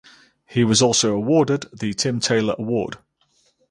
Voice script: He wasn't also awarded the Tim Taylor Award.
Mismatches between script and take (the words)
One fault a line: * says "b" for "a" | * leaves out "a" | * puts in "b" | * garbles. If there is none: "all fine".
* says "was" for "wasn't"